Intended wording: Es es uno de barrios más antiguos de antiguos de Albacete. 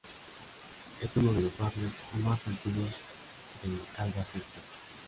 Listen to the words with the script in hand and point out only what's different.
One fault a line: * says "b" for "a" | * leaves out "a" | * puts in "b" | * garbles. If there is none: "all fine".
* leaves out "es"
* puts in "los"
* leaves out "antiguos de"